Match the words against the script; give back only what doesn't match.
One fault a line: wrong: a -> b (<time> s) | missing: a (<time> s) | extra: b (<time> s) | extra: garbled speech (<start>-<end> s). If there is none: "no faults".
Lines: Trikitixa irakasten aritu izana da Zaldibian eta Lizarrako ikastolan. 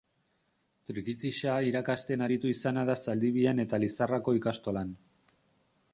no faults